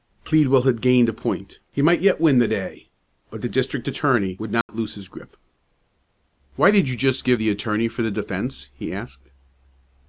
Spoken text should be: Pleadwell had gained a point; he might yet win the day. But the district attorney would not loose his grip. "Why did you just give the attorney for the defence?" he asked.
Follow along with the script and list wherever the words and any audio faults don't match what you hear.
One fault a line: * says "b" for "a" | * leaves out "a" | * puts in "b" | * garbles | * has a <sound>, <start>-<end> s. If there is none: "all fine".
* has a dropout, 4.6-4.7 s